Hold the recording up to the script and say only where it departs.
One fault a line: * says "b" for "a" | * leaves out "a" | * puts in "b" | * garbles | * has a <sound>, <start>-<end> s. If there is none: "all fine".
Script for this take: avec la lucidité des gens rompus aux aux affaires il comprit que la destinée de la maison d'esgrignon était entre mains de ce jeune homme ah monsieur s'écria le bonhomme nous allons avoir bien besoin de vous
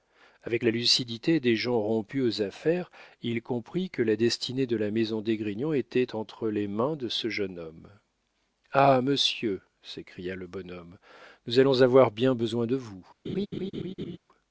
* leaves out "aux"
* puts in "les"
* has a laugh, 13.2-14.2 s